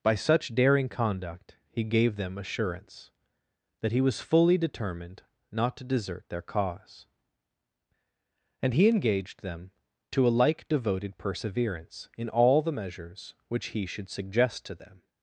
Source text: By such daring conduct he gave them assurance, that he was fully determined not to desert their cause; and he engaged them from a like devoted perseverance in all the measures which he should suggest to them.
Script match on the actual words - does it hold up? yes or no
no